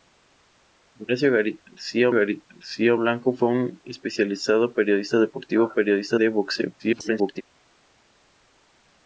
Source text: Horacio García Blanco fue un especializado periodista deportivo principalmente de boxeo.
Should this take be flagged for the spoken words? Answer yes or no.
yes